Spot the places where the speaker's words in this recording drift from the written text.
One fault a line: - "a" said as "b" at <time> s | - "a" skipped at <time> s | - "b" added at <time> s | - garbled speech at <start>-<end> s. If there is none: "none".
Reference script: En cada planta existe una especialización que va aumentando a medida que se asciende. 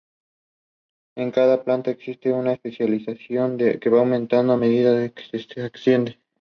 none